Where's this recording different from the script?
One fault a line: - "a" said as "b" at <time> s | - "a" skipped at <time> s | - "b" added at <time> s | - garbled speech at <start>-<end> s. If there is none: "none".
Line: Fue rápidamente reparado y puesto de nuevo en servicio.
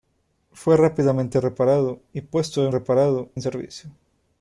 - "nuevo" said as "reparado" at 2.7 s